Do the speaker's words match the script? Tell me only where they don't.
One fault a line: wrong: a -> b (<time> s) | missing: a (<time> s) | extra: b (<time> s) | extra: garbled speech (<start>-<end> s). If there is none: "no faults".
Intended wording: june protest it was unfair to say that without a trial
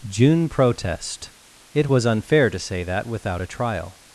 no faults